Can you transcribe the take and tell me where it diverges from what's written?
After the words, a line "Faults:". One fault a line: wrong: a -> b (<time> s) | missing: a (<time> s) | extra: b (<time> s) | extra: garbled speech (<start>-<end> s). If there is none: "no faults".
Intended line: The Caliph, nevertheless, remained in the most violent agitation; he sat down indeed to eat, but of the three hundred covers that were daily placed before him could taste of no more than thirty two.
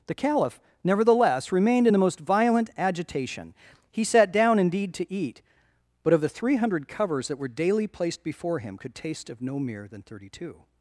The Caliph, nevertheless, remained in the most violent agitation; he sat down indeed to eat, but of the three hundred covers that were daily placed before him could taste of no mere than thirty two.
Faults:
wrong: more -> mere (9.6 s)